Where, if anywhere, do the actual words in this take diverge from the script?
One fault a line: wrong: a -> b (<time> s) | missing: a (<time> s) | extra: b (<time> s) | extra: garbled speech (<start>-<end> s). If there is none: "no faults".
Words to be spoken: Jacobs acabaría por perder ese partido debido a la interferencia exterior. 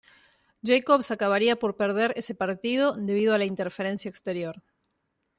no faults